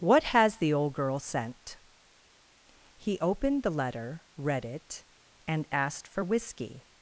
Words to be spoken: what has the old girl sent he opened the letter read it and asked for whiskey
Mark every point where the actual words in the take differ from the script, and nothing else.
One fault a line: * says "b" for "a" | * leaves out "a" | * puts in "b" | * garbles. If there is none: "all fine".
all fine